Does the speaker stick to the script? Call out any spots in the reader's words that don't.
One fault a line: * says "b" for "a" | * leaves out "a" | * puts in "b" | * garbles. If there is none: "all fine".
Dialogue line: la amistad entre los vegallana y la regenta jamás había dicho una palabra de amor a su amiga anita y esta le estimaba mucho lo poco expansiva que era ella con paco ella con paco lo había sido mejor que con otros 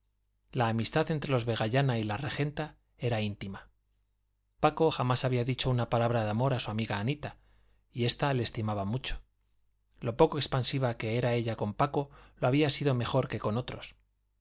* puts in "era íntima paco"
* leaves out "ella con paco"